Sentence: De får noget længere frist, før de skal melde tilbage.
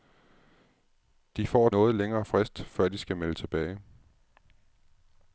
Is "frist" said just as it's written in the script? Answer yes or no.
yes